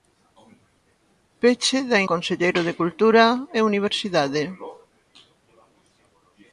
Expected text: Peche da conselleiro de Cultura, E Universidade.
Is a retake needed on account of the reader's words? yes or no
no